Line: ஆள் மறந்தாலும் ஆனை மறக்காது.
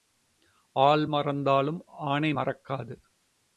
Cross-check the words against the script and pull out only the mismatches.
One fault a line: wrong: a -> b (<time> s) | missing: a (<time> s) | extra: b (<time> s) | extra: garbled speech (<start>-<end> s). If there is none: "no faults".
no faults